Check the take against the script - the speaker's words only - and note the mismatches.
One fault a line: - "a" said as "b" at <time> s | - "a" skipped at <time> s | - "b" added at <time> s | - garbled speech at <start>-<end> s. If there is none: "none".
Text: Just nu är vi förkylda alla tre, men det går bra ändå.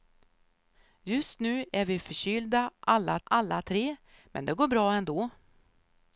- "alla" added at 3.2 s